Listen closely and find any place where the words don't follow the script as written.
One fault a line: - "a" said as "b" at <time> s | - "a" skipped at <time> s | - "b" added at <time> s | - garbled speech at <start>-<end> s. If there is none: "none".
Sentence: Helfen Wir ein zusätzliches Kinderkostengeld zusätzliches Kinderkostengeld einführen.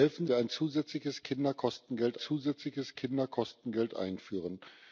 none